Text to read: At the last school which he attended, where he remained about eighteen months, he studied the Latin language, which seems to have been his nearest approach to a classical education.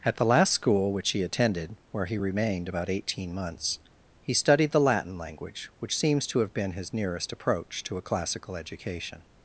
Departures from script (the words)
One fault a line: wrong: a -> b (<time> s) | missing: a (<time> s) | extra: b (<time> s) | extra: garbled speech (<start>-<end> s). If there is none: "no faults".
no faults